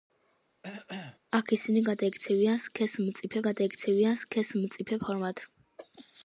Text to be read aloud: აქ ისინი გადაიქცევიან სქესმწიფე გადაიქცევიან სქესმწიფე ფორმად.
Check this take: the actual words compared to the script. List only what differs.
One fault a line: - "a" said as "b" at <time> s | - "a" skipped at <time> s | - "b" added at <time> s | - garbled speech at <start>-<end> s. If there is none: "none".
none